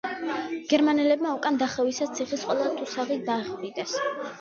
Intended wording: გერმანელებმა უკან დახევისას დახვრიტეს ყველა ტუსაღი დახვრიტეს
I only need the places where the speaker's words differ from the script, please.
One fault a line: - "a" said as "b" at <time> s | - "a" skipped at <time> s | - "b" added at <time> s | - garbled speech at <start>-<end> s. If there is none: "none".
- "დახვრიტეს" said as "ციხის" at 2.2 s